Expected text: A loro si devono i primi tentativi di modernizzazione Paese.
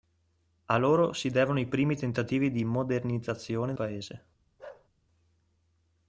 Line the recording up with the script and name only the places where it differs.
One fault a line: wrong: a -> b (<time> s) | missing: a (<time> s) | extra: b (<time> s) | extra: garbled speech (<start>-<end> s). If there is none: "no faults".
no faults